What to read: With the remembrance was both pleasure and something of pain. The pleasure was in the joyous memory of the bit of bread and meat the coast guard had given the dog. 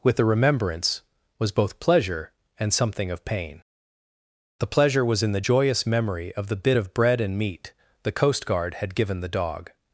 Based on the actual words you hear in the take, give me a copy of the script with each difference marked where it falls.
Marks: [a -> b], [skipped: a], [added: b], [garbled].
With the remembrance was both pleasure and something of pain. The pleasure was in the joyous memory of the bit of bread and meat the coast guard had given the dog.